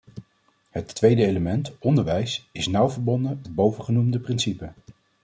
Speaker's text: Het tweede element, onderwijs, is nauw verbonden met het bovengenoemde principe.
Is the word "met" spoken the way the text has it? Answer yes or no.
no